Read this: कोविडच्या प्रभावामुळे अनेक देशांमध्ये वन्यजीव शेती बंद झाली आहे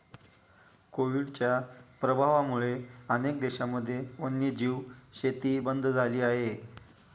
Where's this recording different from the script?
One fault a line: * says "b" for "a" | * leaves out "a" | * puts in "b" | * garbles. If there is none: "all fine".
all fine